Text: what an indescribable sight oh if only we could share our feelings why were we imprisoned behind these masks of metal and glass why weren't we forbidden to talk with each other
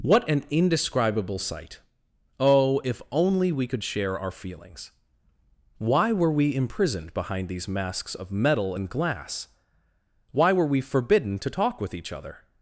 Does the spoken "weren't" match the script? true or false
false